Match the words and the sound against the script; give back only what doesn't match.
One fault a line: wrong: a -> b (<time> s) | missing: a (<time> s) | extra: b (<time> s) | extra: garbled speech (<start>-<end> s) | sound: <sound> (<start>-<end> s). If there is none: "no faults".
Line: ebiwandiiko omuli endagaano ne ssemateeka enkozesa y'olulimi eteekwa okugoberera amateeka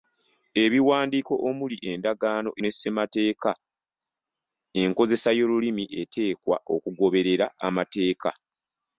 no faults